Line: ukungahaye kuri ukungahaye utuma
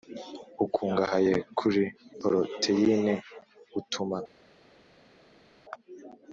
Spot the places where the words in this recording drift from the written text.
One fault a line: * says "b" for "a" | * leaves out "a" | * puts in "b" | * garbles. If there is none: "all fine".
* says "poroteyine" for "ukungahaye"